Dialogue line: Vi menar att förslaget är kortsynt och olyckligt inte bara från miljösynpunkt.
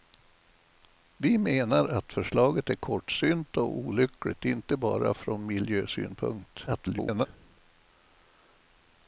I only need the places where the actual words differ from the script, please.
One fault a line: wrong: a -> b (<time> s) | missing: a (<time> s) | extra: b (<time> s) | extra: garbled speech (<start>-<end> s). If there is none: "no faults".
extra: garbled speech (6.7-7.3 s)